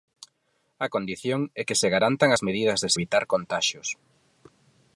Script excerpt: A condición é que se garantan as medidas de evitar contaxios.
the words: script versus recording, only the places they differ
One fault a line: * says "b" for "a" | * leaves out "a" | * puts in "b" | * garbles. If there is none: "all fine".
all fine